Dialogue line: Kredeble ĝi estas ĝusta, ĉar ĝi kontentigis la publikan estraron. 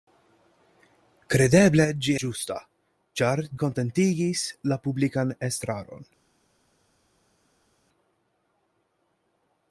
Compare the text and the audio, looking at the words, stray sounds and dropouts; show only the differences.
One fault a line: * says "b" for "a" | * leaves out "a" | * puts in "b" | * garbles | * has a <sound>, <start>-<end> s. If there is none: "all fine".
* leaves out "estas"
* leaves out "ĝi"